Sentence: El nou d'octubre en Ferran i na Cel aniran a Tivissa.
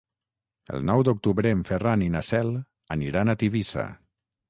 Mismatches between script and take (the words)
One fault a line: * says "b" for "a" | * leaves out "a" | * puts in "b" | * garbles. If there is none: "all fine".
all fine